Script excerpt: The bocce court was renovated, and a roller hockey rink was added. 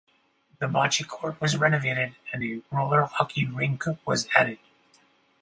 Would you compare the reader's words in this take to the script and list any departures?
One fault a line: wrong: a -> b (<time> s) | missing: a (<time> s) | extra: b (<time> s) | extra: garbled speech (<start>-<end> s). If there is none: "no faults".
no faults